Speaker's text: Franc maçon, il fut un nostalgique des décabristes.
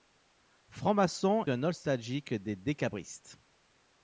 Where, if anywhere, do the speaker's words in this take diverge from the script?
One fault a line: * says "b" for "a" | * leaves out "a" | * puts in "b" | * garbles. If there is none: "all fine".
* leaves out "il fut"